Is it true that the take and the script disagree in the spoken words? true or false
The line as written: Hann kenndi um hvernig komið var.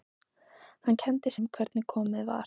false